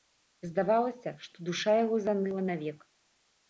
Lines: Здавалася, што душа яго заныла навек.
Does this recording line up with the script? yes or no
yes